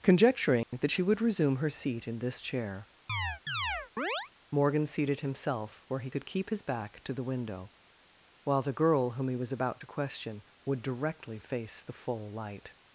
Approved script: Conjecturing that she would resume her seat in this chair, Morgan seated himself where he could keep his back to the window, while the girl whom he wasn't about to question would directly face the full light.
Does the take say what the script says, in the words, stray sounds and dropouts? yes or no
no